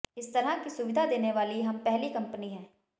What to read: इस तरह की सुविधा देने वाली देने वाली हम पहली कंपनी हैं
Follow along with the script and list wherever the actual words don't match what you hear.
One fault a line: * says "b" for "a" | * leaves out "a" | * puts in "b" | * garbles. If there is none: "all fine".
* leaves out "देने वाली"